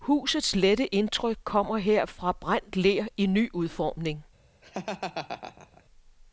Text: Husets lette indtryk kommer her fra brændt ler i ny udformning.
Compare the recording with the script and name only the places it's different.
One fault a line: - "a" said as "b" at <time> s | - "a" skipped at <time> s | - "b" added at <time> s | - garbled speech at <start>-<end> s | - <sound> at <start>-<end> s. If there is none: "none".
- laugh at 4.6-5.8 s